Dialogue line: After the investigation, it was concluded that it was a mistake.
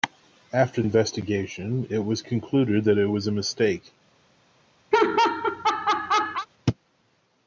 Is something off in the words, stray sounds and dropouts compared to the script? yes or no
yes